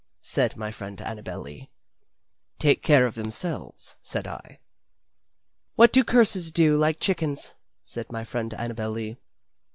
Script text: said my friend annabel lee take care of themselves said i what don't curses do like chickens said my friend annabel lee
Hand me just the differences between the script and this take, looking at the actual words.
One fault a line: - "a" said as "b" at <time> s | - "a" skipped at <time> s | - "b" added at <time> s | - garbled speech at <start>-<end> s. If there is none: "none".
- "don't" said as "do" at 5.9 s